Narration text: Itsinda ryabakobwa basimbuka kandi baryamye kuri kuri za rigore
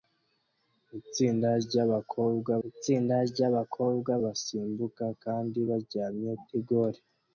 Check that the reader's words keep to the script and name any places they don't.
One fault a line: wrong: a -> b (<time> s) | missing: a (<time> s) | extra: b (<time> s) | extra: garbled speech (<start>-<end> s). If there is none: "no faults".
extra: itsinda ryabakobwa (2.7 s)
missing: kuri kuri za (6.3 s)